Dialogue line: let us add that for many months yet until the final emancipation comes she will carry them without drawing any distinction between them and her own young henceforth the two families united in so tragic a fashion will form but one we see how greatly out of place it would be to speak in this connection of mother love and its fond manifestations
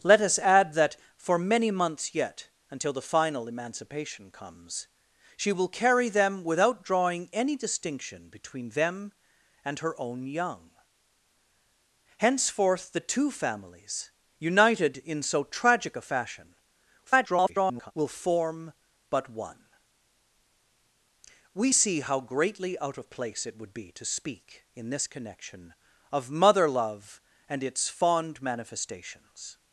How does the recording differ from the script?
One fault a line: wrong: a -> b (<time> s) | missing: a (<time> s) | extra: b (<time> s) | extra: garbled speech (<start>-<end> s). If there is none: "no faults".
extra: garbled speech (17.1-17.9 s)